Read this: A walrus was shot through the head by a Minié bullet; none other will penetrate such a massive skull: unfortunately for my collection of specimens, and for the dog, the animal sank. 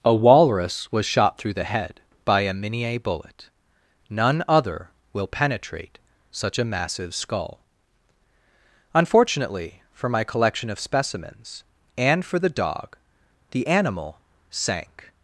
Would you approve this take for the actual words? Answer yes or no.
yes